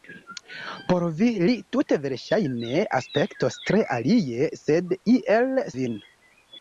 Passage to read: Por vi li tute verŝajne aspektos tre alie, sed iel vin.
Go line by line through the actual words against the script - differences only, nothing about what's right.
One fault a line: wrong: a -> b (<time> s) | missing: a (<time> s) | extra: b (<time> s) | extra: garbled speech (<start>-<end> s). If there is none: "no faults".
no faults